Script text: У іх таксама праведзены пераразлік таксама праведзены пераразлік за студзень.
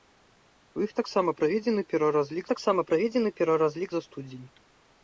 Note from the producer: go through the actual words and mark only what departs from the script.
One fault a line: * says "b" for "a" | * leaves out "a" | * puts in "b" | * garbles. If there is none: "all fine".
all fine